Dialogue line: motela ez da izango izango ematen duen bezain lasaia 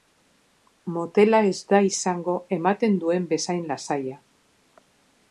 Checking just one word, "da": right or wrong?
right